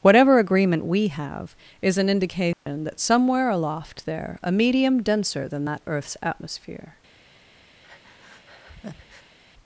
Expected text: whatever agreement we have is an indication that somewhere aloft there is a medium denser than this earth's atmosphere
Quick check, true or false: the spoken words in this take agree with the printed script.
false